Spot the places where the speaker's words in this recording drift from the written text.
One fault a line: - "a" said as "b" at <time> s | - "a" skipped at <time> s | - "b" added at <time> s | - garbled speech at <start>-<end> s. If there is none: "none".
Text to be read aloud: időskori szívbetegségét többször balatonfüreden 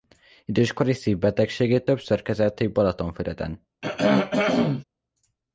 - "kezelték" added at 2.2 s